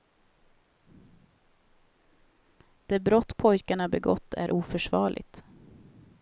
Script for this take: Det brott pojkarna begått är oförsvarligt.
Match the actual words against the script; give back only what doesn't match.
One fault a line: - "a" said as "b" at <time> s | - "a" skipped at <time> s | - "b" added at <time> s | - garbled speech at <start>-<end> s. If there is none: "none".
none